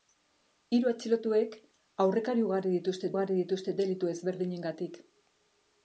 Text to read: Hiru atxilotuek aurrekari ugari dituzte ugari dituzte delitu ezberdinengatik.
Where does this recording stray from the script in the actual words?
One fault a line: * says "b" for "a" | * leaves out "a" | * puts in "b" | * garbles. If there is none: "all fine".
all fine